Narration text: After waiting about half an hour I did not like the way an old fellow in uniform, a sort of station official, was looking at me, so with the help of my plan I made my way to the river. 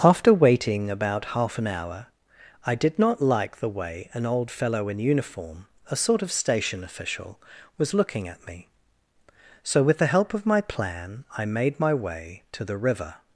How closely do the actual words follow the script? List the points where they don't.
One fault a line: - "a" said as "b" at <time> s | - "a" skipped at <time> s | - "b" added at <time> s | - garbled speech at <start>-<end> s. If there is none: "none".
none